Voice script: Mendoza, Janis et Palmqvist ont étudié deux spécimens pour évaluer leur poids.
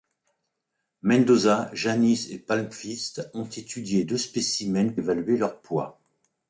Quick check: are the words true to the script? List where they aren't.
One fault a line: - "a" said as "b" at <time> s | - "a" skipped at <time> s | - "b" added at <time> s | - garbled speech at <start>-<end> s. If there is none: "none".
- "pour" skipped at 4.9 s